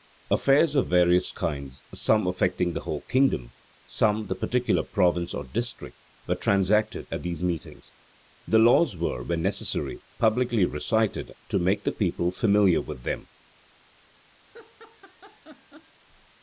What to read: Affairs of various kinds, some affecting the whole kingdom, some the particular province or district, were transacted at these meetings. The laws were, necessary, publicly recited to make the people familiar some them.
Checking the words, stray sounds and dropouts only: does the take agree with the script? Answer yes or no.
no